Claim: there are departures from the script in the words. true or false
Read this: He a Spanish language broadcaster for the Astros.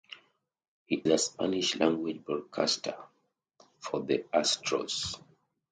false